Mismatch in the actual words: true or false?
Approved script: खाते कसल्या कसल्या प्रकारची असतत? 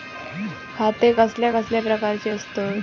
false